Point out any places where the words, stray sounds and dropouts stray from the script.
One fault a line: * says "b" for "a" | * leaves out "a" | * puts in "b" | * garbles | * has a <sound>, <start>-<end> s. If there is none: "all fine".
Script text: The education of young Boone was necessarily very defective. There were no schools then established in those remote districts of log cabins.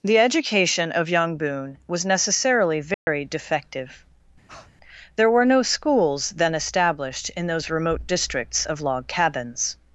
* has a dropout, 2.9-3.1 s
* has a breath, 4.5-4.7 s